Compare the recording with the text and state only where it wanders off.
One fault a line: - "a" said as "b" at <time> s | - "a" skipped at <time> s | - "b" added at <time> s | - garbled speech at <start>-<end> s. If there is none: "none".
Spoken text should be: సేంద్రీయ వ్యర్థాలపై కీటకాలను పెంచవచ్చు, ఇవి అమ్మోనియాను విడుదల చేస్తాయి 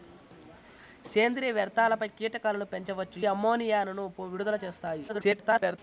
- "ఇవి" skipped at 3.2 s
- garbled speech at 5.1-5.8 s